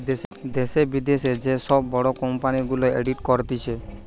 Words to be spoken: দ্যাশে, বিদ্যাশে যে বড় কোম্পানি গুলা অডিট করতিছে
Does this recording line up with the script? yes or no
no